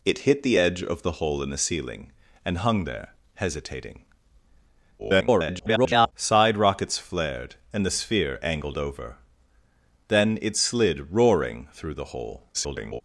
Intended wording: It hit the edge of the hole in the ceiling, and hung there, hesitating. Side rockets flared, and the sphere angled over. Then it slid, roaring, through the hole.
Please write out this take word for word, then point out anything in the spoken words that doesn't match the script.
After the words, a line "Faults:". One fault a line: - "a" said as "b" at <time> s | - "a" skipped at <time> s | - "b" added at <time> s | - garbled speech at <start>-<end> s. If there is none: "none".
It hit the edge of the hole in the ceiling, and hung there, hesitating. [garbled] Side rockets flared, and the sphere angled over. Then it slid, roaring, through the hole. [garbled]
Faults:
- garbled speech at 5.0-6.1 s
- garbled speech at 12.5-13.0 s